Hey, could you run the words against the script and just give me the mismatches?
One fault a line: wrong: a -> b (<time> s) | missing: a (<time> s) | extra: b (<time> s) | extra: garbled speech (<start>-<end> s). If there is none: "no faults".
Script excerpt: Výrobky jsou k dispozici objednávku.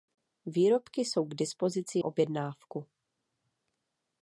no faults